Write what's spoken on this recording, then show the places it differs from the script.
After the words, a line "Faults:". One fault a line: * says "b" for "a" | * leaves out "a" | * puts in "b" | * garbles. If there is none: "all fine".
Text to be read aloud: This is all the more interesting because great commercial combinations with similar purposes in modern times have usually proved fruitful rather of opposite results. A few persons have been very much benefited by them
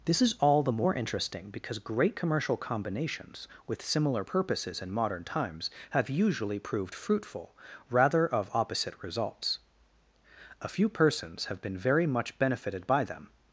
This is all the more interesting because great commercial combinations with similar purposes in modern times have usually proved fruitful rather of opposite results. A few persons have been very much benefited by them
Faults:
all fine